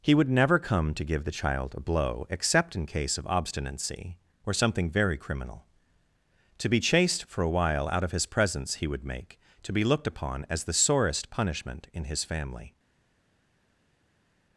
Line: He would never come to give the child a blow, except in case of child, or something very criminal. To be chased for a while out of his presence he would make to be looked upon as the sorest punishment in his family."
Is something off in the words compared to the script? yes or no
yes